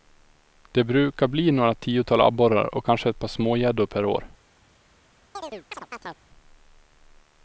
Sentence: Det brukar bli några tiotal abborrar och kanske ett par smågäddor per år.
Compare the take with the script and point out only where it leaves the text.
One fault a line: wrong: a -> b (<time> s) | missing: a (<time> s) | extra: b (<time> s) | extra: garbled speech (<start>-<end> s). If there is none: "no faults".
no faults